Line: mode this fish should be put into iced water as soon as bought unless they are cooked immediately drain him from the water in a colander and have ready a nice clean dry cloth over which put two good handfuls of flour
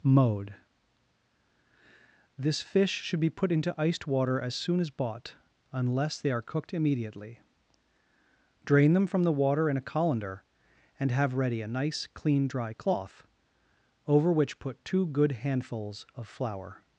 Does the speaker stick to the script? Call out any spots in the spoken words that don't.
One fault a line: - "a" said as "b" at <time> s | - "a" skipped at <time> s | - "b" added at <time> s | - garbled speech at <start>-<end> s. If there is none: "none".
- "him" said as "them" at 8.9 s